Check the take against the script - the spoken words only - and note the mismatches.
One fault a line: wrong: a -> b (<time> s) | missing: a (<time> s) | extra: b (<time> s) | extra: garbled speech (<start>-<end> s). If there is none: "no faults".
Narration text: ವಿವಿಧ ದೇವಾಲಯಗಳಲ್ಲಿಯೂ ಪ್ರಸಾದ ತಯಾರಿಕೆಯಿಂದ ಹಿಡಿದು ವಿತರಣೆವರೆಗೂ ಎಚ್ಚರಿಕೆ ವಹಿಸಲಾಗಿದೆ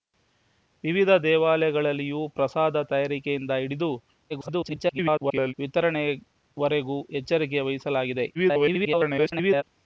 extra: garbled speech (4.3-5.5 s)
extra: garbled speech (8.3-9.6 s)